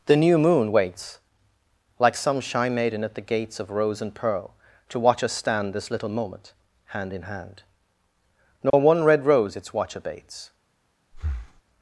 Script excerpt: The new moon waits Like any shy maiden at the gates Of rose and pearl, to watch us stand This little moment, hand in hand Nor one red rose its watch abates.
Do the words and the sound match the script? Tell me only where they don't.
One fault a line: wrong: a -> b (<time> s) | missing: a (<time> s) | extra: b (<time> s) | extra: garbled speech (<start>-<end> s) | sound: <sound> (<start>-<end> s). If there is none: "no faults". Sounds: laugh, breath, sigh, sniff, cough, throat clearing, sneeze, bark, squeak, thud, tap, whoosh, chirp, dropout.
wrong: any -> some (2.1 s)
sound: dropout (8.7-8.7 s)
sound: breath (11.1-11.6 s)